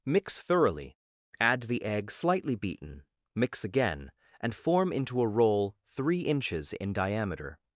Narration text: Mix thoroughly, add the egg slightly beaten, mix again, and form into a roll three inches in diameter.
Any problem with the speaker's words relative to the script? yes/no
no